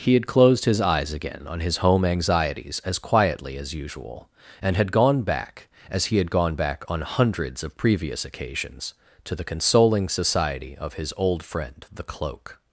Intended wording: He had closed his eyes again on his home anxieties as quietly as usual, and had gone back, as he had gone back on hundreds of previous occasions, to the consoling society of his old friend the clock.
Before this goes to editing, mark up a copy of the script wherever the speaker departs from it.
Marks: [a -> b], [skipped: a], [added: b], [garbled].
He had closed his eyes again on his home anxieties as quietly as usual, and had gone back, as he had gone back on hundreds of previous occasions, to the consoling society of his old friend the [clock. -> cloak]